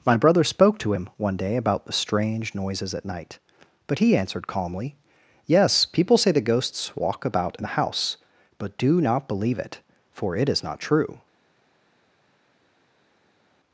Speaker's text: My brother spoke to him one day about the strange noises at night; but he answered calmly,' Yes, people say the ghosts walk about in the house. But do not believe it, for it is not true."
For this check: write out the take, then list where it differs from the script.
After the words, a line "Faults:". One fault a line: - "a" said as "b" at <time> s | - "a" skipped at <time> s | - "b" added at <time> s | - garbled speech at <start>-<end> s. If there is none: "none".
My brother spoke to him one day about the strange noises at night; but he answered calmly,' Yes, people say the ghosts walk about in the house. But do not believe it, for it is not true."
Faults:
none